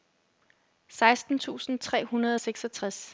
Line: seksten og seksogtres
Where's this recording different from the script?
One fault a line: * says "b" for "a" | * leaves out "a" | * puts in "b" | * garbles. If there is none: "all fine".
* puts in "tusind tre hundrede"